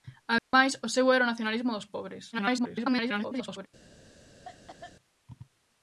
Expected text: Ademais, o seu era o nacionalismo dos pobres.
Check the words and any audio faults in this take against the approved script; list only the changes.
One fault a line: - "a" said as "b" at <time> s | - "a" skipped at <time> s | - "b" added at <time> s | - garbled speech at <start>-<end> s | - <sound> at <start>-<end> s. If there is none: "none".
- dropout at 0.4-0.5 s
- garbled speech at 2.3-3.7 s
- cough at 4.4-5.0 s